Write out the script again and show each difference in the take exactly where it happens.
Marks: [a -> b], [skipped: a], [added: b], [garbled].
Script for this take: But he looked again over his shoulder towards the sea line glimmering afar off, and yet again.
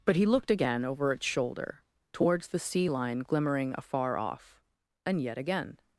But he looked again over [his -> its] shoulder towards the sea line glimmering afar off, and yet again.